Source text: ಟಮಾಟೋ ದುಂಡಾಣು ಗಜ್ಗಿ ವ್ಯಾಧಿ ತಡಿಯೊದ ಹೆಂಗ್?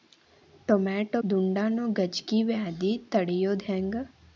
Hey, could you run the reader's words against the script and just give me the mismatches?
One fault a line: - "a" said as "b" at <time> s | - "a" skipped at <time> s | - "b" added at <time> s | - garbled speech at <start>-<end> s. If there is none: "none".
none